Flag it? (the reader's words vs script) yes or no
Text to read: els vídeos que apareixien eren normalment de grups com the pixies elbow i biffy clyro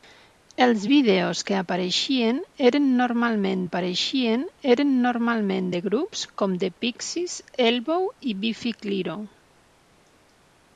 yes